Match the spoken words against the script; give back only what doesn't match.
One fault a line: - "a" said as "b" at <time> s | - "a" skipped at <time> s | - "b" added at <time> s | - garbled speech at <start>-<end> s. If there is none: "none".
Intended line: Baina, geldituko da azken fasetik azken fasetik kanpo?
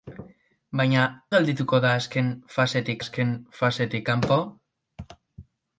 none